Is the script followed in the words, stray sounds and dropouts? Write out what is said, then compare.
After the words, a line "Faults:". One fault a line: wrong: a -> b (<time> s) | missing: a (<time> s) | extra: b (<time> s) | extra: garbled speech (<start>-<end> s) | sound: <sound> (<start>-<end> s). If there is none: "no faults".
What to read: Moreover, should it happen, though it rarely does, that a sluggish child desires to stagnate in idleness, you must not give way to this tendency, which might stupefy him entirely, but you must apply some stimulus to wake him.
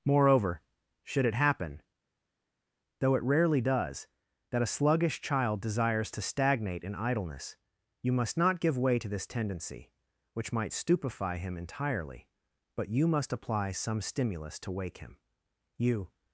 Moreover, should it happen, though it rarely does, that a sluggish child desires to stagnate in idleness, you must not give way to this tendency, which might stupefy him entirely, but you must apply some stimulus to wake him. You
Faults:
extra: You (15.8 s)